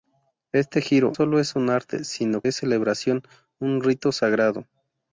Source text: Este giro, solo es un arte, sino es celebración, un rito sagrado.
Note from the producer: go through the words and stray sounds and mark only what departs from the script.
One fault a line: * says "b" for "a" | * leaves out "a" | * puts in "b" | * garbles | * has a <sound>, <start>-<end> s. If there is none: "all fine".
all fine